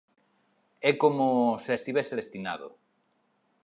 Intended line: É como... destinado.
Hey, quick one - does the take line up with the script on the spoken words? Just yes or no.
no